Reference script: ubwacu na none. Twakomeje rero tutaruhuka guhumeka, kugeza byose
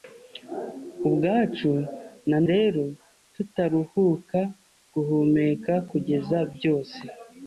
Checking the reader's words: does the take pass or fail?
fail